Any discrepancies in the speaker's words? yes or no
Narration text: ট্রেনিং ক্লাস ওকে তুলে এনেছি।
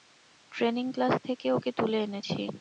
yes